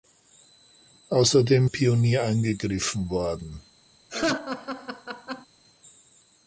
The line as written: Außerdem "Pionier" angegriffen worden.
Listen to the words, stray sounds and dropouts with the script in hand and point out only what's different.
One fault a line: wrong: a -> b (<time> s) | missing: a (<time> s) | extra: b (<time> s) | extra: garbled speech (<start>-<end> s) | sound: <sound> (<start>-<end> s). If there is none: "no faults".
sound: laugh (4.1-5.5 s)